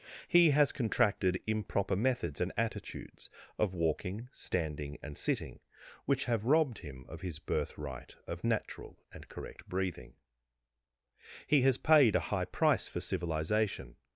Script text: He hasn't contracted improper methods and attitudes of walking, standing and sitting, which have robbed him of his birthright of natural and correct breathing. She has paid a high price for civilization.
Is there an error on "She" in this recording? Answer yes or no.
yes